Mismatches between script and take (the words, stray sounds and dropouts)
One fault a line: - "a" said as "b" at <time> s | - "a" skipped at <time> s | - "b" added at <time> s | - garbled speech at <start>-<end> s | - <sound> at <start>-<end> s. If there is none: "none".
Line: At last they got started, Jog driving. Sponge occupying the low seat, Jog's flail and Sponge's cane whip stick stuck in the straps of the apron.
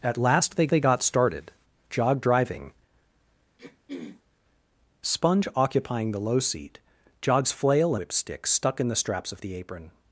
- "they" added at 0.7 s
- throat clearing at 3.6-4.2 s
- "and Sponge's cane" skipped at 7.9 s